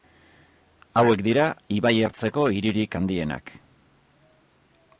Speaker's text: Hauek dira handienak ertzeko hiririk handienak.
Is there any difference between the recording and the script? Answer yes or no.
yes